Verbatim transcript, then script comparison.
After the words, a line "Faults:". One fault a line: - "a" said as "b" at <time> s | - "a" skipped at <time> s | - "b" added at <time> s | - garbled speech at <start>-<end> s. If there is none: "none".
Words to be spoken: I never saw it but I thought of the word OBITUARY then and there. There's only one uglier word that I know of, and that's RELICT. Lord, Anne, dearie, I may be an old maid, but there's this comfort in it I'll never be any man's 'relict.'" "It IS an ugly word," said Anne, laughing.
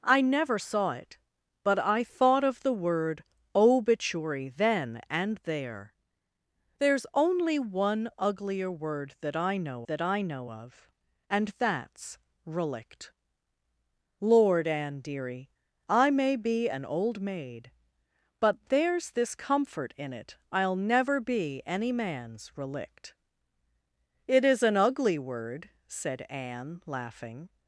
I never saw it but I thought of the word OBITUARY then and there. There's only one uglier word that I know that I know of, and that's RELICT. Lord, Anne, dearie, I may be an old maid, but there's this comfort in it I'll never be any man's 'relict.'" "It IS an ugly word," said Anne, laughing.
Faults:
- "that I know" added at 9.9 s